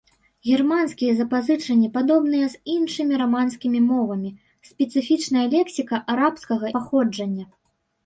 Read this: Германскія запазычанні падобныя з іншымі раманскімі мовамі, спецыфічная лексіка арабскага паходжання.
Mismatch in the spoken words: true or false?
false